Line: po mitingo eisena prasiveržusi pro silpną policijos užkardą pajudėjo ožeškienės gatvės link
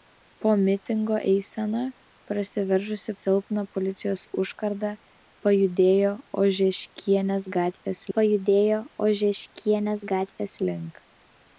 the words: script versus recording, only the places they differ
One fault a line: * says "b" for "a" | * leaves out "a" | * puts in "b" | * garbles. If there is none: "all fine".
* leaves out "pro"
* puts in "pajudėjo ožeškienės gatvės"